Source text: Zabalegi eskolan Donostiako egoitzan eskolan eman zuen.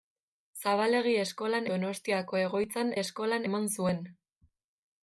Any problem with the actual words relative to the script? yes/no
no